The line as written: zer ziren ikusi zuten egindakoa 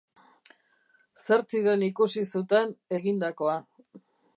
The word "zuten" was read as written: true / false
true